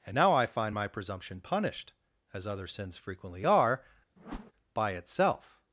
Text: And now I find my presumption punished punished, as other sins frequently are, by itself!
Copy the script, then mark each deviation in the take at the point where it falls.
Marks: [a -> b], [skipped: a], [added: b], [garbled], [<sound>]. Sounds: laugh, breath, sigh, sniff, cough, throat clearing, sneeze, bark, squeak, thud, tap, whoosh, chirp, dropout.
And now I find my presumption punished [skipped: punished,] as other sins frequently are, [whoosh] by itself!